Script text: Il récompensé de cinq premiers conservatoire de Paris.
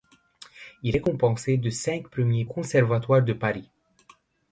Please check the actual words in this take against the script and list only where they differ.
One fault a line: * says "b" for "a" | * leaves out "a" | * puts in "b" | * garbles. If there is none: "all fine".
all fine